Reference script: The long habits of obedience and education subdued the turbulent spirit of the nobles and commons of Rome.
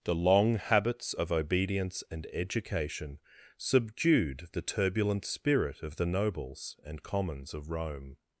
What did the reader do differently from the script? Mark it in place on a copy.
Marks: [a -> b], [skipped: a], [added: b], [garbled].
The long habits of obedience and education subdued the turbulent spirit of the nobles and commons of Rome.